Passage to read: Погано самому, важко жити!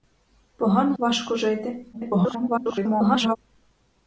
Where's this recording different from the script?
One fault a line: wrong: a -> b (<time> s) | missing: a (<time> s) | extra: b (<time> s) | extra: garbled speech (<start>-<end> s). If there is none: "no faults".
missing: самому (1.0 s)
extra: garbled speech (1.9-3.4 s)